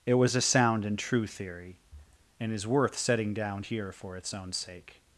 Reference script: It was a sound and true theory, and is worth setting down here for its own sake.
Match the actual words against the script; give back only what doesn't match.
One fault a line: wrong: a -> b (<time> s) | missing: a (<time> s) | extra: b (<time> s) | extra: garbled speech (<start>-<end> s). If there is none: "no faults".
no faults